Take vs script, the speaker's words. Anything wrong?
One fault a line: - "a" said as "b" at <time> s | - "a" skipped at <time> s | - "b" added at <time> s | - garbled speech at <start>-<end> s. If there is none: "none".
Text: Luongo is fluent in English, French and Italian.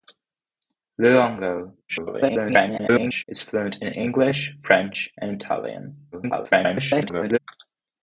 - garbled speech at 1.9-3.2 s
- garbled speech at 6.1-7.4 s